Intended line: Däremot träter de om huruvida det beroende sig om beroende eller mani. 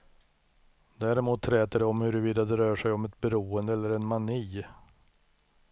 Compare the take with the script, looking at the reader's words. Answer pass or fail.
fail